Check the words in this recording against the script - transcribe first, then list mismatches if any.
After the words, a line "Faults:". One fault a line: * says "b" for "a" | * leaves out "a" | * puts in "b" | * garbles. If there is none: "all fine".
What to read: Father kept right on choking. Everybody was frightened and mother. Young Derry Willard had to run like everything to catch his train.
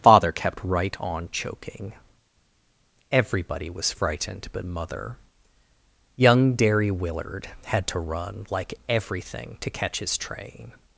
Father kept right on choking. Everybody was frightened but mother. Young Derry Willard had to run like everything to catch his train.
Faults:
* says "but" for "and"